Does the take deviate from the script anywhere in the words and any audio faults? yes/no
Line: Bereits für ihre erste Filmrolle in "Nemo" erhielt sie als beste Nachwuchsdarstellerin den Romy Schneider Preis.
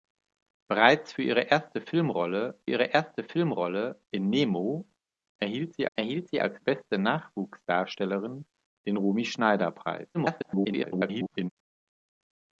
yes